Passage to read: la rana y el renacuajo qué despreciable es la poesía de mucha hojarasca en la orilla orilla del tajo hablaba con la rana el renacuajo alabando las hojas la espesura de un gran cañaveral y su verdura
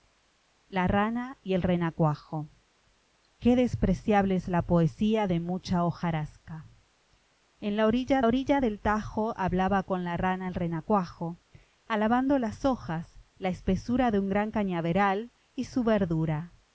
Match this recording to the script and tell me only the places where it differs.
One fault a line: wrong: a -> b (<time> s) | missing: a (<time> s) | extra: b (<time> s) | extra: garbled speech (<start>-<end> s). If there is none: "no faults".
no faults